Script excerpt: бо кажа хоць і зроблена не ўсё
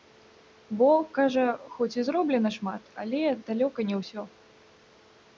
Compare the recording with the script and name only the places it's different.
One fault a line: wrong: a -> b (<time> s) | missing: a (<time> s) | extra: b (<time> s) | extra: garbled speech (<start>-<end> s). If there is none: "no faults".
extra: шмат але далёка (2.6 s)